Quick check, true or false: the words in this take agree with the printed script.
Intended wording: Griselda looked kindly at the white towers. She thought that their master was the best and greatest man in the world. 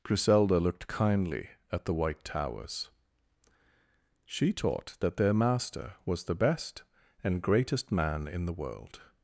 false